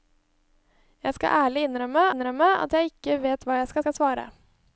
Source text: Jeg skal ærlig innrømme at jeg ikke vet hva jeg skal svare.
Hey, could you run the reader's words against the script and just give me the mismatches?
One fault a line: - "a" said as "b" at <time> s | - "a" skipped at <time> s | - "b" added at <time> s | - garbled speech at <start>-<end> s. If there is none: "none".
- "innrømme" added at 2.1 s
- "skal" added at 3.8 s